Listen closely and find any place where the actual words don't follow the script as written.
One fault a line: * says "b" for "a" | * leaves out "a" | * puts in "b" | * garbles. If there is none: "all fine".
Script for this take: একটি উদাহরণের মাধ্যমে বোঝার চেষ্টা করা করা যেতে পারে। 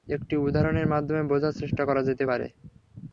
* leaves out "করা"